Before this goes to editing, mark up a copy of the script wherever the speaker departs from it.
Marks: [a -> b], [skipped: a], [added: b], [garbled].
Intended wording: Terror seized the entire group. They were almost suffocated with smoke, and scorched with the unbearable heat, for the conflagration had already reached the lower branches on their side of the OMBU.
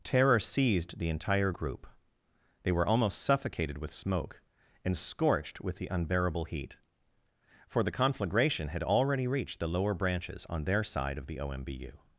Terror seized the entire group. They were almost suffocated with smoke, and scorched with the unbearable heat, for the conflagration had already reached the lower branches on their side of the OMBU.